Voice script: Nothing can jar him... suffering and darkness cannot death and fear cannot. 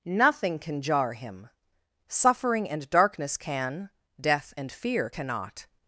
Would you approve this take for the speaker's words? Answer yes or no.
no